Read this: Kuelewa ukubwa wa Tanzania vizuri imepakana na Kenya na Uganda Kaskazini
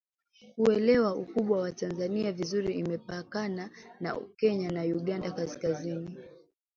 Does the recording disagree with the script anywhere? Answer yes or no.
no